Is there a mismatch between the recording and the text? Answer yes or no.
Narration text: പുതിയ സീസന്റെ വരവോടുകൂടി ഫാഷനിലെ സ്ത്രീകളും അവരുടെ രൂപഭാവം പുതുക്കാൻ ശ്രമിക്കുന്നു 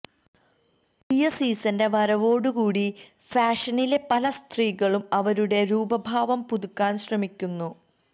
yes